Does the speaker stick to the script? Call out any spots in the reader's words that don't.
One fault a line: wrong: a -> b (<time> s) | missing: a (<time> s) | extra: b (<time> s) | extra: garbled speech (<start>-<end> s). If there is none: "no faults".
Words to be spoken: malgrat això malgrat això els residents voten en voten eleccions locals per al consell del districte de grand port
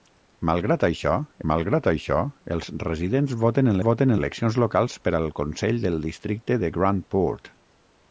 no faults